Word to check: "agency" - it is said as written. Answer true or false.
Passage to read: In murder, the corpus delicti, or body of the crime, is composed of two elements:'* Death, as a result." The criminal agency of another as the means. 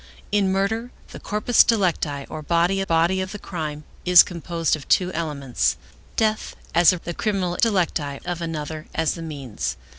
false